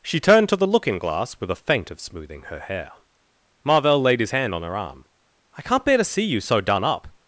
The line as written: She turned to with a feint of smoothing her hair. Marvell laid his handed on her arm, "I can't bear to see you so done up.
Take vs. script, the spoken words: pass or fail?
fail